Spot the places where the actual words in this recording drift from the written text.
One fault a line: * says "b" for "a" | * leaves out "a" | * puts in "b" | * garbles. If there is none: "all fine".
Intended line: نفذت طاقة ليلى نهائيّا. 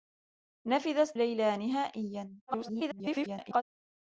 * leaves out "طاقة"
* garbles